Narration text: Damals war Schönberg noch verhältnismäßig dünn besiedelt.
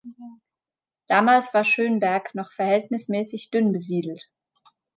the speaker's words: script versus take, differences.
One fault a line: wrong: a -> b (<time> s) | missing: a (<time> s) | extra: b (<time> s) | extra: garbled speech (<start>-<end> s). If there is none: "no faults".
no faults